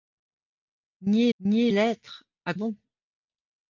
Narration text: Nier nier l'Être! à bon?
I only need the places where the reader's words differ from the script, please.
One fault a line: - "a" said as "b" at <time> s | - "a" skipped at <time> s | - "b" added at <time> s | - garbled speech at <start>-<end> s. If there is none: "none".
none